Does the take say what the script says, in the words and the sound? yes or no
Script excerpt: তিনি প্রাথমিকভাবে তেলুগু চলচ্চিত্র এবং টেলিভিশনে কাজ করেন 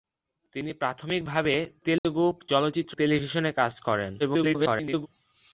no